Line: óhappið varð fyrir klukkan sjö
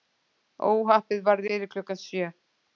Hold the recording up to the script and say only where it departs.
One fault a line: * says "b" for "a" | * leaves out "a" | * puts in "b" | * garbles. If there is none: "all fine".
all fine